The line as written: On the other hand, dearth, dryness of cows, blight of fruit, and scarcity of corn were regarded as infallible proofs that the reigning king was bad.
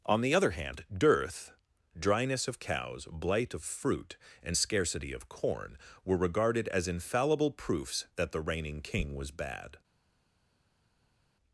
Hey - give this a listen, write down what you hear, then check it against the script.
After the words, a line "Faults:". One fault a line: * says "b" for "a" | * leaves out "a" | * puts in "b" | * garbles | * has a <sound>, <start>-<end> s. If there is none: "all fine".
On the other hand, dearth, dryness of cows, blight of fruit, and scarcity of corn were regarded as infallible proofs that the reigning king was bad.
Faults:
all fine